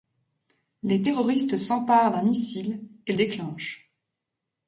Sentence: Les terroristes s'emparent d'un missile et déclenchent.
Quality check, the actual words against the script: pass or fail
pass